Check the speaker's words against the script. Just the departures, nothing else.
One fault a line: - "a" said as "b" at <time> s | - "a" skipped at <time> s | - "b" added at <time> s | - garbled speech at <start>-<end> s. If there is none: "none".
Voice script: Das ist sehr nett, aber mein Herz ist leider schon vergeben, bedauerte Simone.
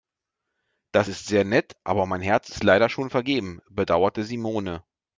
none